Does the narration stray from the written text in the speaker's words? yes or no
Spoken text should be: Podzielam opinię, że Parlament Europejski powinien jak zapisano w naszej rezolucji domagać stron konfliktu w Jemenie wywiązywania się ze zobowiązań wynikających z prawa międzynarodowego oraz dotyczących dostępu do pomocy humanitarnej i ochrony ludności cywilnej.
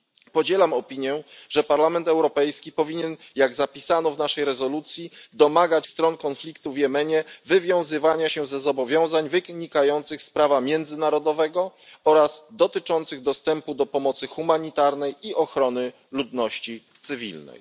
no